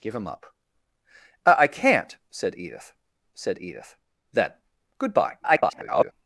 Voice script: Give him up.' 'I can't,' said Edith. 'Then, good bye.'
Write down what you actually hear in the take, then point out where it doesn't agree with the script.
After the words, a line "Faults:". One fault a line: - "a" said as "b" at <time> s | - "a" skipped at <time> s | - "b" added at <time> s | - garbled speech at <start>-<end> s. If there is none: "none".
Give him up.' 'I can't,' said Edith said Edith. 'Then, good bye.' [garbled]
Faults:
- "said Edith" added at 3.3 s
- garbled speech at 5.4-6.1 s